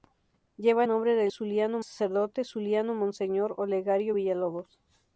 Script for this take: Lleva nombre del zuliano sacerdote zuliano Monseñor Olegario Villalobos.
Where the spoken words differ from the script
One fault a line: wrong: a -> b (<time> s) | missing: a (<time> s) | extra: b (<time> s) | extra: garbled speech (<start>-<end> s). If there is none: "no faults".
no faults